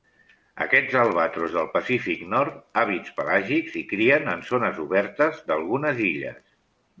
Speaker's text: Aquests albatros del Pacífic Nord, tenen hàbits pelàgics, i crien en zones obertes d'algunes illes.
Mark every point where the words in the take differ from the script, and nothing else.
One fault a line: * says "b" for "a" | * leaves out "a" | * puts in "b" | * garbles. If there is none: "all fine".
* leaves out "tenen"